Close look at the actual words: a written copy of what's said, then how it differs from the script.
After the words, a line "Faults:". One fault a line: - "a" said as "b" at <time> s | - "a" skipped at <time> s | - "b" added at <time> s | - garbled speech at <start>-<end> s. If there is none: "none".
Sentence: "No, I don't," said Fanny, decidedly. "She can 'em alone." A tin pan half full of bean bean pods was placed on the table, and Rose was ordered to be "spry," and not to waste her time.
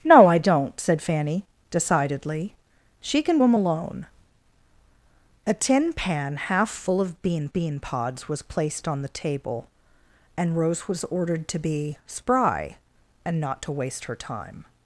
"No, I don't," said Fanny, decidedly. "She can 'em alone." A tin pan half full of bean bean pods was placed on the table, and Rose was ordered to be "spry," and not to waste her time.
Faults:
none